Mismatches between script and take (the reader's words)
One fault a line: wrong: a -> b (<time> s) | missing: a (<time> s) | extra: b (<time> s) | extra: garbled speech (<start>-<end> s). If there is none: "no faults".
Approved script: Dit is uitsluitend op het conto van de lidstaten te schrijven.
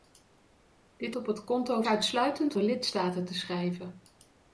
missing: is uitsluitend (1.1 s)
wrong: van -> uitsluitend (1.9 s)